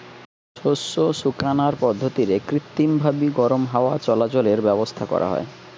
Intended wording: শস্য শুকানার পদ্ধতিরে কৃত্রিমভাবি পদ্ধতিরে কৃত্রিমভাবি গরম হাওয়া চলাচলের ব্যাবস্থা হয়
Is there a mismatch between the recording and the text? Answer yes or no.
yes